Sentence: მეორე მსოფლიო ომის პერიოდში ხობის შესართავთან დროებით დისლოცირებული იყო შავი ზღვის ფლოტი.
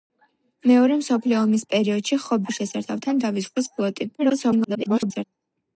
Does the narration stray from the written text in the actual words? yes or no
yes